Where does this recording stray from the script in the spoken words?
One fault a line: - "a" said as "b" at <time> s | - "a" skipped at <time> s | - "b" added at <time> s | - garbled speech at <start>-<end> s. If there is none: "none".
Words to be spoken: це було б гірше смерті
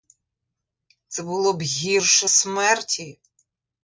none